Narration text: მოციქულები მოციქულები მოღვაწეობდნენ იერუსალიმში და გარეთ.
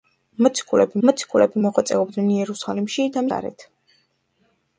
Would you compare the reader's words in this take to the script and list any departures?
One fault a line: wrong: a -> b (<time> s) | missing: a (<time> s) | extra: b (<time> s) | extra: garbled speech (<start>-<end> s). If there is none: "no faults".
no faults